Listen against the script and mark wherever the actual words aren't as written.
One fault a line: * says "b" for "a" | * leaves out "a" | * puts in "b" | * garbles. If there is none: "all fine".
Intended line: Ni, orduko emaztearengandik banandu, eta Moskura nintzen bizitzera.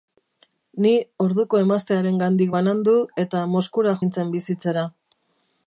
all fine